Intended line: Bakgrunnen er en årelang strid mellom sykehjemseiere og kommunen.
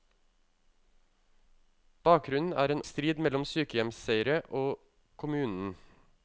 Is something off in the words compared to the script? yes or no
yes